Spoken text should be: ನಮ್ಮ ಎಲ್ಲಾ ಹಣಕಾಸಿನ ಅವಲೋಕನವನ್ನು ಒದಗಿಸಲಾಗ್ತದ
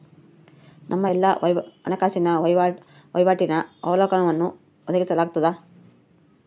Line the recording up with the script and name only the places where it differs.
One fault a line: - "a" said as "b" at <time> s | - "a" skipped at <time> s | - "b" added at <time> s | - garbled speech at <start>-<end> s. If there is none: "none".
- "ವಹಿವಾಟಿನ" added at 3.1 s